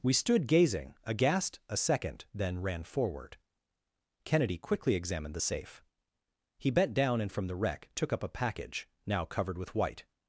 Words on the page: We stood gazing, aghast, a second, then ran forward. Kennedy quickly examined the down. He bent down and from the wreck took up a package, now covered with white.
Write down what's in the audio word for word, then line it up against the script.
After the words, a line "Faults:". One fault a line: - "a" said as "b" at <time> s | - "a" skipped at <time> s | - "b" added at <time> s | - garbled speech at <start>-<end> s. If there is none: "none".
We stood gazing, aghast, a second, then ran forward. Kennedy quickly examined the safe. He bent down and from the wreck took up a package, now covered with white.
Faults:
- "down" said as "safe" at 5.4 s